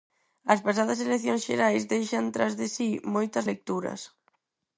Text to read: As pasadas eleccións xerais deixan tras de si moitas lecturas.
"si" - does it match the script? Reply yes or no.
yes